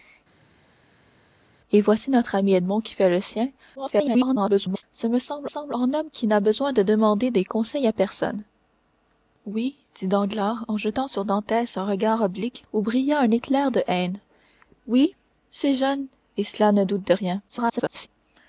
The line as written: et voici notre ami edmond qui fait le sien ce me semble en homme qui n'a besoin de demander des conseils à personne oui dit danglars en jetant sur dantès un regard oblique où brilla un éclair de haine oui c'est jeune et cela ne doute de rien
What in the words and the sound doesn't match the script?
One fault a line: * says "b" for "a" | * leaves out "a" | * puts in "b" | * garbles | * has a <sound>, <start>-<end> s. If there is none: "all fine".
* garbles
* puts in "semble"
* garbles